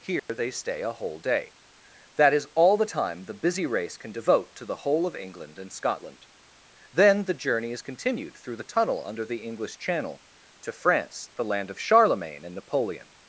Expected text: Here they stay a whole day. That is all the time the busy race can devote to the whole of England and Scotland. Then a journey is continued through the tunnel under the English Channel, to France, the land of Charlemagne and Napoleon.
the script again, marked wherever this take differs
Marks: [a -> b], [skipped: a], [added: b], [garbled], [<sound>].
Here [dropout] they stay a whole day. That is all the time the busy race can devote to the whole of England and Scotland. Then [a -> the] journey is continued through the tunnel under the English Channel, to France, the land of Charlemagne and Napoleon.